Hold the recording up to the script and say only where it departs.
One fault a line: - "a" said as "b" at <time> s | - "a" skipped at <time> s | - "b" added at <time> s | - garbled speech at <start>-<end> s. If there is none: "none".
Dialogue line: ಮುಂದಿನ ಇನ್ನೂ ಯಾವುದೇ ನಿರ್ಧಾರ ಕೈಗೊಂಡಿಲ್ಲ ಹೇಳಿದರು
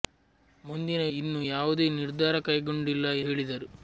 none